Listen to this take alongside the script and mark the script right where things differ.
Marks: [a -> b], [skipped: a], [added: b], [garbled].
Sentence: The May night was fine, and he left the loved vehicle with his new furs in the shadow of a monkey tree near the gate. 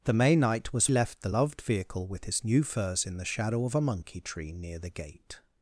The May night was [skipped: fine, and he] left the loved vehicle with his new furs in the shadow of a monkey tree near the gate.